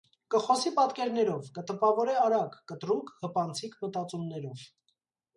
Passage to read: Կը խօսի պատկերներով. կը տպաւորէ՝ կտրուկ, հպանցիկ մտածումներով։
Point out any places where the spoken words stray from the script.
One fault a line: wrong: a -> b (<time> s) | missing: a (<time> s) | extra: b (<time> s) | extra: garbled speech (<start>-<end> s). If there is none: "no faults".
extra: արագ (2.2 s)